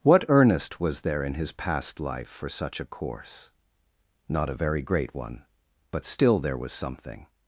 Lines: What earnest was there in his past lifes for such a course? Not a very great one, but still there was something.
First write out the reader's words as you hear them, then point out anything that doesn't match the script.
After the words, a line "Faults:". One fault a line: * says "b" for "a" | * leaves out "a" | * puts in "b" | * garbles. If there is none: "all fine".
What earnest was there in his past life for such a course? Not a very great one, but still there was something.
Faults:
* says "life" for "lifes"